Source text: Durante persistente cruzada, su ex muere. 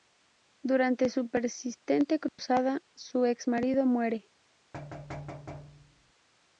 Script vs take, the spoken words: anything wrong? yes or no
yes